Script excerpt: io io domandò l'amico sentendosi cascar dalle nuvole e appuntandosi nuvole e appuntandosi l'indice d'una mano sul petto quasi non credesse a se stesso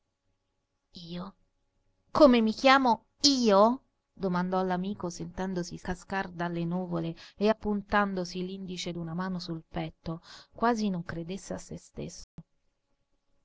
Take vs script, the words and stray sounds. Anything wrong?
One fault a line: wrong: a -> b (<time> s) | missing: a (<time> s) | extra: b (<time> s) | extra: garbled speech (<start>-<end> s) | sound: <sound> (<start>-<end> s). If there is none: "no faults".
extra: come mi chiamo (2.1 s)
missing: nuvole e appuntandosi (8.5 s)
sound: dropout (12.2-12.4 s)